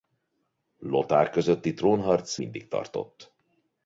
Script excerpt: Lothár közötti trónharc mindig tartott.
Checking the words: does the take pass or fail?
pass